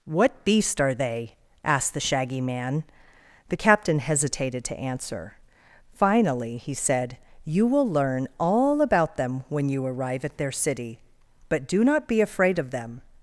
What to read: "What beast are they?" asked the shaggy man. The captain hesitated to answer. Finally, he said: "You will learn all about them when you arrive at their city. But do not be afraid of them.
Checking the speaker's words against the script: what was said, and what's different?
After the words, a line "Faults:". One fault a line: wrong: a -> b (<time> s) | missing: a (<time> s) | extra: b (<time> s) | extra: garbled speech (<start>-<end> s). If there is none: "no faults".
"What beast are they?" asked the shaggy man. The captain hesitated to answer. Finally, he said: "You will learn all about them when you arrive at their city. But do not be afraid of them.
Faults:
no faults